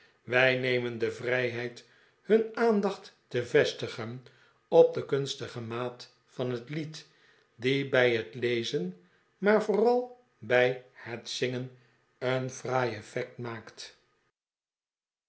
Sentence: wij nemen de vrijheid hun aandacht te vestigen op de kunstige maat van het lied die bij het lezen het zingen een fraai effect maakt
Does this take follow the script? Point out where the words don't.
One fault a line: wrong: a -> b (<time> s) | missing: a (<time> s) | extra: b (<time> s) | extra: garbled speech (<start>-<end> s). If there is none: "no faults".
extra: maar vooral bij (9.4 s)